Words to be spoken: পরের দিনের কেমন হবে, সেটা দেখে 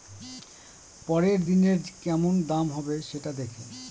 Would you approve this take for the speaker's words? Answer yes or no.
no